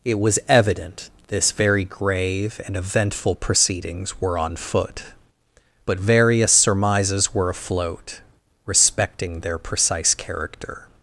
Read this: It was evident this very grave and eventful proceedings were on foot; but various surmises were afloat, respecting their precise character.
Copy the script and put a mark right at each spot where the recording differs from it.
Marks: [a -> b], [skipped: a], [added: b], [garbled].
It was evident this very grave and eventful proceedings were on foot; but various surmises were afloat, respecting their precise character.